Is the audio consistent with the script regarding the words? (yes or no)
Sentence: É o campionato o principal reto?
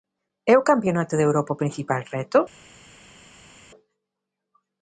no